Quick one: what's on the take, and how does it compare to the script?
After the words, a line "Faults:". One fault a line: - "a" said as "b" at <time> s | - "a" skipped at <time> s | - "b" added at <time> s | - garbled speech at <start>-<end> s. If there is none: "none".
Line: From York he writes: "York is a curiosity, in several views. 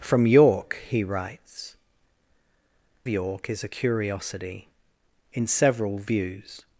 From York he writes: "York is a curiosity, in several views.
Faults:
none